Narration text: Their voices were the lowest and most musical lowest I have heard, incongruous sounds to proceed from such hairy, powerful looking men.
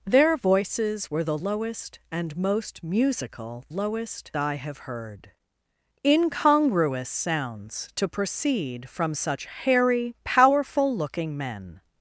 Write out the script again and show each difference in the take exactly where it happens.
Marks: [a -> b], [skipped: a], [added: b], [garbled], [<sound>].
Their voices were the lowest and most musical lowest I have heard, incongruous sounds to proceed from such hairy, powerful looking men.